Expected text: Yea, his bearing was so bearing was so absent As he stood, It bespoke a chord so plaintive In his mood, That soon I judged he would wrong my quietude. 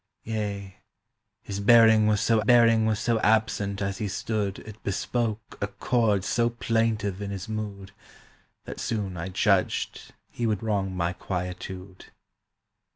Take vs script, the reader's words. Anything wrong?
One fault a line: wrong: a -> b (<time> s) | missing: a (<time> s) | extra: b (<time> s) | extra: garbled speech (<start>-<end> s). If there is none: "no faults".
no faults